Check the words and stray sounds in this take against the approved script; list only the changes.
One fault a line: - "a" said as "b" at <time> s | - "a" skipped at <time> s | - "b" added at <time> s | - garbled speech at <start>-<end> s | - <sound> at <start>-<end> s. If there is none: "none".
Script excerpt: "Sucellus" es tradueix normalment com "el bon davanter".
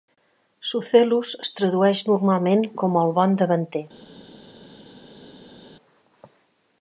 none